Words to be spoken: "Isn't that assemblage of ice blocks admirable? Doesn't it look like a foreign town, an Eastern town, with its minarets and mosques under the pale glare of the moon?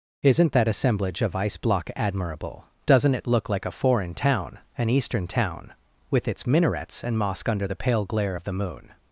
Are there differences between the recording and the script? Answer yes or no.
yes